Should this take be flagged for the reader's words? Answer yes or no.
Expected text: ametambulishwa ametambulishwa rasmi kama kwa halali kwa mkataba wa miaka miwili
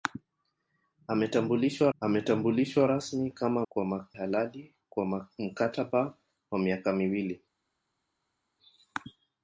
no